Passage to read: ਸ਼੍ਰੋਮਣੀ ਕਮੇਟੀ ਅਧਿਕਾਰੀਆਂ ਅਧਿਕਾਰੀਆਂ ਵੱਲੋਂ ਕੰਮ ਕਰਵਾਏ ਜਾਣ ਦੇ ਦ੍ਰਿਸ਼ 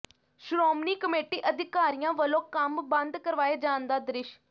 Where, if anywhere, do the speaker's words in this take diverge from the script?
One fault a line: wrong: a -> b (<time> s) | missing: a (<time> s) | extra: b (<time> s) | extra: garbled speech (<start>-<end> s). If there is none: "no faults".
missing: ਅਧਿਕਾਰੀਆਂ (2.1 s)
extra: ਬੰਦ (2.9 s)
wrong: ਦੇ -> ਦਾ (3.9 s)